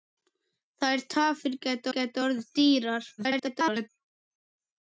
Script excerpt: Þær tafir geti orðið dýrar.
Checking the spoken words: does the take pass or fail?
fail